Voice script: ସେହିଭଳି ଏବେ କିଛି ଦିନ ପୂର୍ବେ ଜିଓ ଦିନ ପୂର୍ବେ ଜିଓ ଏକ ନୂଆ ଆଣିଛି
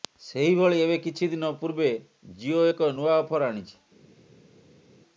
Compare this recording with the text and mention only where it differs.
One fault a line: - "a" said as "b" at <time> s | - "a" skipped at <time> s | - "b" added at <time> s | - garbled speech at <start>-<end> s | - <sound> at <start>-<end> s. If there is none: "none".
- "ଦିନ ପୂର୍ବେ ଜିଓ" skipped at 2.6 s
- "ଅଫର" added at 3.2 s